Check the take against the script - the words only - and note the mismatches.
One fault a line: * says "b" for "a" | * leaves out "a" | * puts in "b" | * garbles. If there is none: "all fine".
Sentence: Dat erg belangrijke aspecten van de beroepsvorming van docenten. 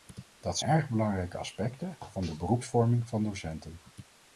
all fine